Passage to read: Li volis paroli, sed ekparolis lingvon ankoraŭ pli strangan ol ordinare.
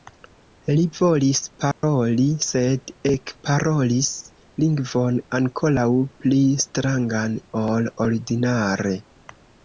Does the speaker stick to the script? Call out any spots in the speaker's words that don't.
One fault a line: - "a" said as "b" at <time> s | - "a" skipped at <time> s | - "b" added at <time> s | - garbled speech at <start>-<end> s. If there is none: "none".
none